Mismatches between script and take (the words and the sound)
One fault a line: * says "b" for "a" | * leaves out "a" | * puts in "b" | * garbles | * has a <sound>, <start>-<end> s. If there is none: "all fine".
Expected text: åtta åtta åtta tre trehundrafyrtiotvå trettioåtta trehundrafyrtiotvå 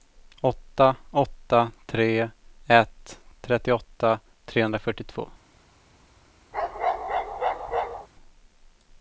* leaves out "åtta"
* says "ett" for "trehundrafyrtiotvå"
* has a bark, 6.5-8.1 s